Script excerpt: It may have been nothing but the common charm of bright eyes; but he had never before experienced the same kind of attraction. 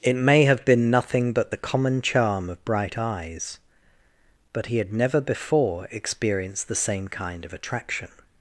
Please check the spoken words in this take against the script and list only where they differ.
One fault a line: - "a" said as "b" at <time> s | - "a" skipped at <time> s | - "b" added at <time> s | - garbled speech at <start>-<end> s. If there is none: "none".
none